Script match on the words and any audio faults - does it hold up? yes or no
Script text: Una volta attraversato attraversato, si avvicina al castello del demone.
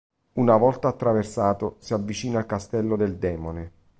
no